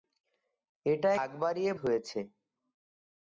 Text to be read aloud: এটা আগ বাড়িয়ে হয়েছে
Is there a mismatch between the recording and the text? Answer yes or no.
no